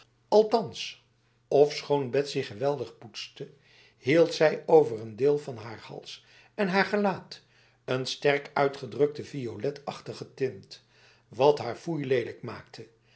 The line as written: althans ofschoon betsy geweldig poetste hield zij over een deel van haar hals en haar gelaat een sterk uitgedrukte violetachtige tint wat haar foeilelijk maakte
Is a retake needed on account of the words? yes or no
no